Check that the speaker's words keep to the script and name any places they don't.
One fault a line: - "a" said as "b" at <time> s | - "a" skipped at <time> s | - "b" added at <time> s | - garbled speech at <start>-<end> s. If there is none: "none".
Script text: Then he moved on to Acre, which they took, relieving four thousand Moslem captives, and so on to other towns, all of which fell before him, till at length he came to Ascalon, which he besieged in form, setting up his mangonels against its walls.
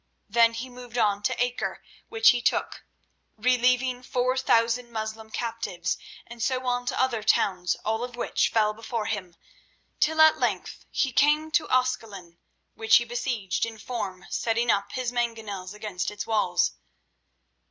- "they" said as "he" at 2.3 s